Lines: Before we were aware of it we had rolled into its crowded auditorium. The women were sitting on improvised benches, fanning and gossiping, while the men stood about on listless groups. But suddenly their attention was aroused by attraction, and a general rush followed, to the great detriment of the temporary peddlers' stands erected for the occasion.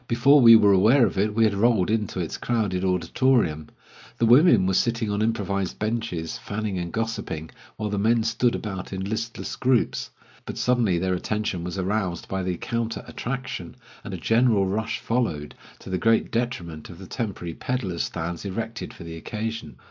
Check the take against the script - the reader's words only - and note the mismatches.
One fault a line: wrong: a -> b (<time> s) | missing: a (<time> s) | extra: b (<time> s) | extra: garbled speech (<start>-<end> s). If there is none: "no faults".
wrong: on -> in (8.9 s)
extra: the counter (12.4 s)